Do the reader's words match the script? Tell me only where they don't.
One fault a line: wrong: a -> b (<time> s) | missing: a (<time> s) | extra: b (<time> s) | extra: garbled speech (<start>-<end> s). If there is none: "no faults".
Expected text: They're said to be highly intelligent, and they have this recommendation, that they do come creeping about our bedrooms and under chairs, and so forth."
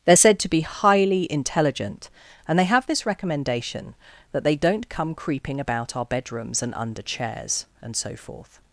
wrong: do -> don't (4.5 s)